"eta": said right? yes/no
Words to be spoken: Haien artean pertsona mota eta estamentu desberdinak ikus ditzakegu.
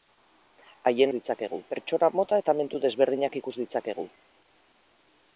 no